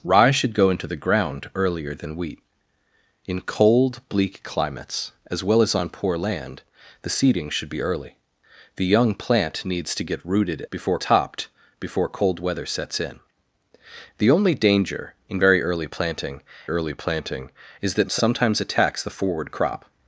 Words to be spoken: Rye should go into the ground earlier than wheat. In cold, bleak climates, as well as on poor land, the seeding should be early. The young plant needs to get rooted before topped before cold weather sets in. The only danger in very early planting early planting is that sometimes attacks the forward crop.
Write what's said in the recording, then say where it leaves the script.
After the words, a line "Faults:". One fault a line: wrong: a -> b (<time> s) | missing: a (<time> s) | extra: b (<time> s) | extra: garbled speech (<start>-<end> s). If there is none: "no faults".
Rye should go into the ground earlier than wheat. In cold, bleak climates, as well as on poor land, the seeding should be early. The young plant needs to get rooted before topped before cold weather sets in. The only danger in very early planting early planting is that sometimes attacks the forward crop.
Faults:
no faults